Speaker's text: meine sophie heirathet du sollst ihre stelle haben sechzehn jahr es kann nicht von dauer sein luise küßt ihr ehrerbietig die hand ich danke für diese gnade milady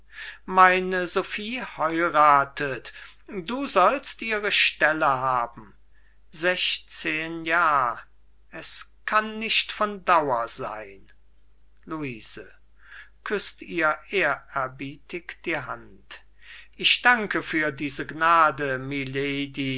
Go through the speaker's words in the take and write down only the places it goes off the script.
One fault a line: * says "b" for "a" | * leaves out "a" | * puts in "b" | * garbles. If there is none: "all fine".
all fine